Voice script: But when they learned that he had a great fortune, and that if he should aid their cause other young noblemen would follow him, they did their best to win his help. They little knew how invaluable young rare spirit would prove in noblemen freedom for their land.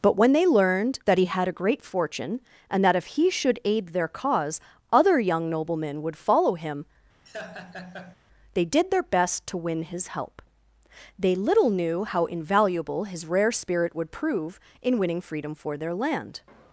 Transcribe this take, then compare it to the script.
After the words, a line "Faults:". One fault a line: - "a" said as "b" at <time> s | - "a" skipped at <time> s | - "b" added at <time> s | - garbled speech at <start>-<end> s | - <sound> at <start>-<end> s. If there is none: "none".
But when they learned that he had a great fortune, and that if he should aid their cause other young noblemen would follow him, they did their best to win his help. They little knew how invaluable his rare spirit would prove in winning freedom for their land.
Faults:
- laugh at 7.3-8.2 s
- "young" said as "his" at 13.0 s
- "noblemen" said as "winning" at 15.0 s